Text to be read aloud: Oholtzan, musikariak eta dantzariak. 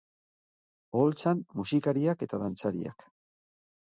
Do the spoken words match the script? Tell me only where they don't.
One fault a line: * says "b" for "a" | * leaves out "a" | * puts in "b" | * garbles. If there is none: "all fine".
all fine